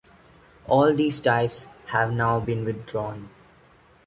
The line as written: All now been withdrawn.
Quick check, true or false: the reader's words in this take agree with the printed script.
false